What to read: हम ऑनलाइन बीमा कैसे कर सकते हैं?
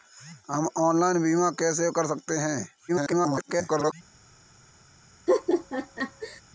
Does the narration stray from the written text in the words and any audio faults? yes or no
yes